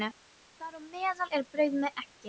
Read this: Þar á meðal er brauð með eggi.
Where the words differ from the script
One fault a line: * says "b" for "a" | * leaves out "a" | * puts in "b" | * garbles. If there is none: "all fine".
all fine